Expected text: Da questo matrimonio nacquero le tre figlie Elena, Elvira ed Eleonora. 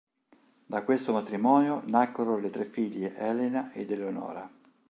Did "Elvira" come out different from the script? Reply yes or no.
yes